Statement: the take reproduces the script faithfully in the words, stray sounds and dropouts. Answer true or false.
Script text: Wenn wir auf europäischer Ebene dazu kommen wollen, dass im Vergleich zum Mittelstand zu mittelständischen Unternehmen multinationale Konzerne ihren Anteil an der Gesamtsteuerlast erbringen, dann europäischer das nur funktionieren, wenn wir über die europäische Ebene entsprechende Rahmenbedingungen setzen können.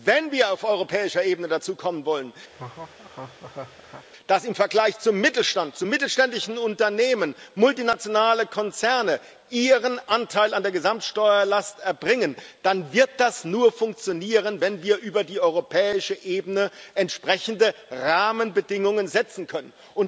false